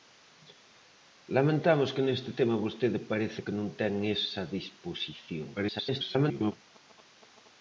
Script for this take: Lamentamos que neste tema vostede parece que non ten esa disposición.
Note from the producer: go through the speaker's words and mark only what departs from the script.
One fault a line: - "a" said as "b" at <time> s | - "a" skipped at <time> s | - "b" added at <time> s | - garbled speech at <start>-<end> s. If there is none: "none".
- garbled speech at 5.6-6.5 s